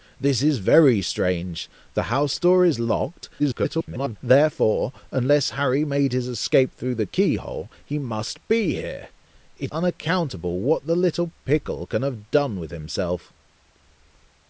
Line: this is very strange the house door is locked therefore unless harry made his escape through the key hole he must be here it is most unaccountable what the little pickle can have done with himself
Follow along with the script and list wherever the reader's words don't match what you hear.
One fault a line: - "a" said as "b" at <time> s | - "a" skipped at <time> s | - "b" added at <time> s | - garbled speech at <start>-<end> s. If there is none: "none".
- garbled speech at 3.4-4.2 s
- "is most" skipped at 9.7 s